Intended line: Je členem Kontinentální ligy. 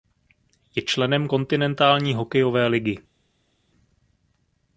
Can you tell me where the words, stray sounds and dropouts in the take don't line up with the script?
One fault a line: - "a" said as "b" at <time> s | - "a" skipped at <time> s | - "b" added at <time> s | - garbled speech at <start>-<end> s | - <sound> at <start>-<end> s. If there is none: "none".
- "hokejové" added at 2.1 s